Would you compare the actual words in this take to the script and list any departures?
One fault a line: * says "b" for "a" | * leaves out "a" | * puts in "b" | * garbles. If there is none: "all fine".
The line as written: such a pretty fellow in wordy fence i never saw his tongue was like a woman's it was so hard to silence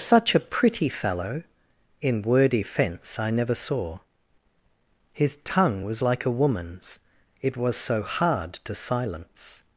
all fine